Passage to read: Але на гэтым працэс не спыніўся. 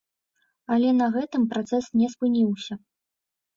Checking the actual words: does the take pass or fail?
pass